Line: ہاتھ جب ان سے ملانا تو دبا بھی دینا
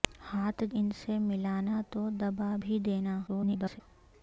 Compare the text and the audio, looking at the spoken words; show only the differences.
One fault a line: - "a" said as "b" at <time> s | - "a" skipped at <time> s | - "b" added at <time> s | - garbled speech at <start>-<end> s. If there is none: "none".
- "جب" skipped at 0.6 s
- garbled speech at 3.3-3.8 s